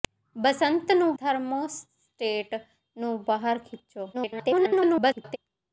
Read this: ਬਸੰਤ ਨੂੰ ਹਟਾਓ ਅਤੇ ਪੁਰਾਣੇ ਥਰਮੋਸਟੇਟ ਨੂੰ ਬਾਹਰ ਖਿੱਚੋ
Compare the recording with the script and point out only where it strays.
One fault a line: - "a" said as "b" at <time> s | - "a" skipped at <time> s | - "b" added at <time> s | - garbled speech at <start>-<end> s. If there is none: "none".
- "ਹਟਾਓ ਅਤੇ ਪੁਰਾਣੇ" skipped at 1.1 s
- garbled speech at 4.1-5.4 s